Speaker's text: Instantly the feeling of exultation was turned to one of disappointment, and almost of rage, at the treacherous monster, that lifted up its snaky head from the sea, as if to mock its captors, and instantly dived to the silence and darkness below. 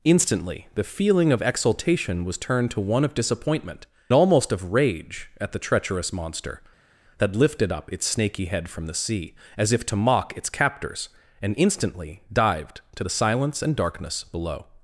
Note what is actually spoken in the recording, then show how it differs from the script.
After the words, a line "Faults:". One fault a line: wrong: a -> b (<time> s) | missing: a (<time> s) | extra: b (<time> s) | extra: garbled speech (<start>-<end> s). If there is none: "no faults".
Instantly the feeling of exultation was turned to one of disappointment, almost of rage, at the treacherous monster, that lifted up its snaky head from the sea, as if to mock its captors, and instantly dived to the silence and darkness below.
Faults:
missing: and (3.9 s)